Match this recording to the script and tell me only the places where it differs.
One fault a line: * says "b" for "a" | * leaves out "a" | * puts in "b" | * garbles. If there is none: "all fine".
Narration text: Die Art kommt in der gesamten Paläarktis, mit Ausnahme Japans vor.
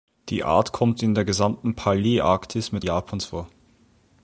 * leaves out "Ausnahme"